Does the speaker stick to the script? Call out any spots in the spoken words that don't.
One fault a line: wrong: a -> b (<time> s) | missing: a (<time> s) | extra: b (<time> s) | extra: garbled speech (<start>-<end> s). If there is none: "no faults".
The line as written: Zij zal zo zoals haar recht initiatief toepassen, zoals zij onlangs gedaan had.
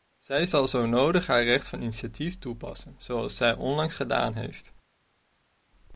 wrong: zoals -> nodig (0.8 s)
extra: van (1.7 s)
wrong: had -> heeft (4.3 s)